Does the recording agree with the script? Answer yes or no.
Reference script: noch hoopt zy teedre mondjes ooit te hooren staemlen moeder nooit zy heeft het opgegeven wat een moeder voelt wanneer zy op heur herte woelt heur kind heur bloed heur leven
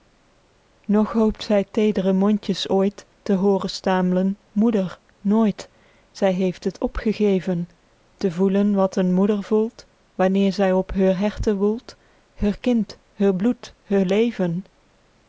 no